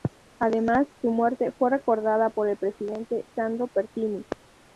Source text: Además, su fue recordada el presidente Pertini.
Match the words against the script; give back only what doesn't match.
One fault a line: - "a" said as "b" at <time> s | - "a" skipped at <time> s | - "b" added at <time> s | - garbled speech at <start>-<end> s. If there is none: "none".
- "muerte" added at 1.1 s
- "por" added at 2.3 s
- "Sandro" added at 3.3 s